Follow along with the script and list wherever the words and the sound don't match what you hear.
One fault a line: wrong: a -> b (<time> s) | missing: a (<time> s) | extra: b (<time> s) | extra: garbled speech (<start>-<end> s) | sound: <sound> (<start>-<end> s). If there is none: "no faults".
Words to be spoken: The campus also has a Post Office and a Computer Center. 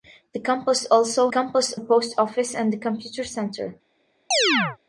wrong: has -> campus (1.3 s)
sound: chirp (4.3-4.8 s)